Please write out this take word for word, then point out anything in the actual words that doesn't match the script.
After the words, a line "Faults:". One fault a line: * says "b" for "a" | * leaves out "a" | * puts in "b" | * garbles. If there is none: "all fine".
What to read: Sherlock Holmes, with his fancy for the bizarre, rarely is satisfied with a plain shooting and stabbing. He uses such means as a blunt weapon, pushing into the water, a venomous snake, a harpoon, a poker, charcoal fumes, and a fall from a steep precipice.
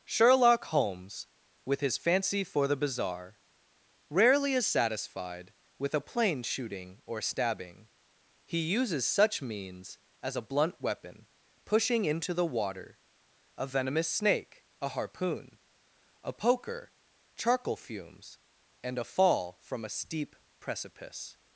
Sherlock Holmes, with his fancy for the bizarre, rarely is satisfied with a plain shooting or stabbing. He uses such means as a blunt weapon, pushing into the water, a venomous snake, a harpoon, a poker, charcoal fumes, and a fall from a steep precipice.
Faults:
* says "or" for "and"